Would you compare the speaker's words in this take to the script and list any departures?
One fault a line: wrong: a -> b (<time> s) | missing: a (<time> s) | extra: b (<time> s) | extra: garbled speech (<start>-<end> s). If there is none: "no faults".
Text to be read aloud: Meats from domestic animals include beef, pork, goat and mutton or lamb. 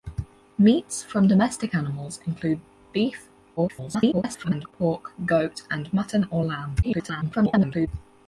extra: garbled speech (3.6-4.7 s)
extra: garbled speech (6.8-7.9 s)